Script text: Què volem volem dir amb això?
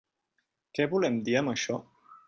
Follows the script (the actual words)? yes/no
no